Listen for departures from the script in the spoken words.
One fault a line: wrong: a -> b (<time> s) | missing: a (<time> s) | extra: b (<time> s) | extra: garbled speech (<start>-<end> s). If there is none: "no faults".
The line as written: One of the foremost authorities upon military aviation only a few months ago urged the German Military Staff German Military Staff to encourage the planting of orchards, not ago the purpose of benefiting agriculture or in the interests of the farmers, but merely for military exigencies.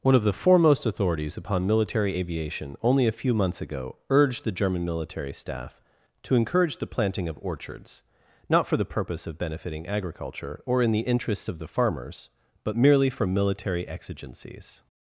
missing: German Military Staff (5.8 s)
wrong: ago -> for (8.6 s)